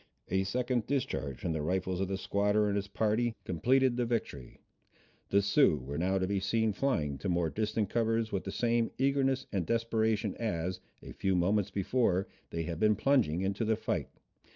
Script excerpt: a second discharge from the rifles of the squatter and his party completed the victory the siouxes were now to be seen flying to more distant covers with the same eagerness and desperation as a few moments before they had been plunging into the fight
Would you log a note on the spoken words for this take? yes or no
no